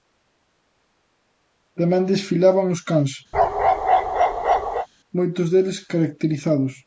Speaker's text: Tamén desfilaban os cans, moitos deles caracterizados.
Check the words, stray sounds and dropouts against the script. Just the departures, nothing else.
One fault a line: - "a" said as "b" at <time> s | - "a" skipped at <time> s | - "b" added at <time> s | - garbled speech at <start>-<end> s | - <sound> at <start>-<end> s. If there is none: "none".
- bark at 3.3-4.9 s